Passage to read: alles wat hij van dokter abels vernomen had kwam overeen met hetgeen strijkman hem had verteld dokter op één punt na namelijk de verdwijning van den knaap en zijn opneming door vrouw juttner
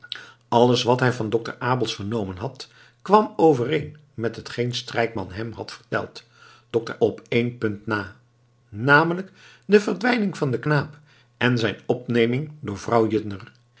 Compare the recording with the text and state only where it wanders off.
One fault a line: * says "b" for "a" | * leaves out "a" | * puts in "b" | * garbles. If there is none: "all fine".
all fine